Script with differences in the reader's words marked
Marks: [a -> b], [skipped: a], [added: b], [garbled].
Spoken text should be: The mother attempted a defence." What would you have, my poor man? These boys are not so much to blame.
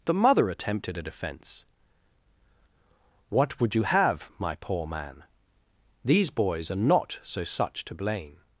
The mother attempted a defence." What would you have, my poor man? These boys are not so [much -> such] to blame.